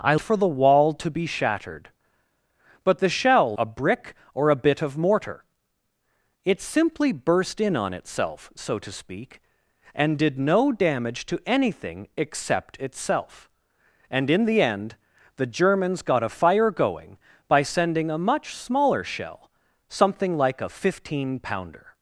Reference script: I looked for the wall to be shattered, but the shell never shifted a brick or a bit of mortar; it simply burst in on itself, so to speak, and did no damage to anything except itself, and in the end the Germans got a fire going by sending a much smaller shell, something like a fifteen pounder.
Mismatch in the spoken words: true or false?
true